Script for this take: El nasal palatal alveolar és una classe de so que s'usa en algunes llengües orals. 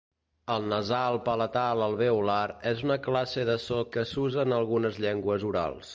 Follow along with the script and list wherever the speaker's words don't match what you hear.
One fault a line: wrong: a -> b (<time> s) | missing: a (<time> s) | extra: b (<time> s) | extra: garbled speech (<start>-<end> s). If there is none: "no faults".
no faults